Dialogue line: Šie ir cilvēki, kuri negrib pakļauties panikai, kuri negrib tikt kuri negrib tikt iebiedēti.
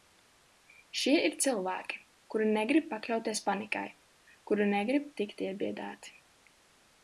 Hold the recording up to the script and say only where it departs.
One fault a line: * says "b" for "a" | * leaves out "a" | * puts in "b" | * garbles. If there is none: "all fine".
* leaves out "kuri negrib tikt"